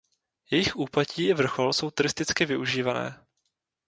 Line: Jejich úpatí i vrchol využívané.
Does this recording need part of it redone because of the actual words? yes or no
yes